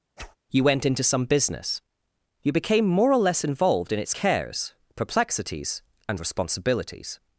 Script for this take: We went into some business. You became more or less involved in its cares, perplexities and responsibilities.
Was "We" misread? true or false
true